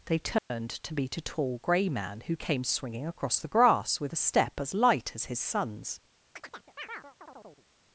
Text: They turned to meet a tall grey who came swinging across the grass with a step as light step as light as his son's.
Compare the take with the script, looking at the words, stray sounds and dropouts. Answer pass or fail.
fail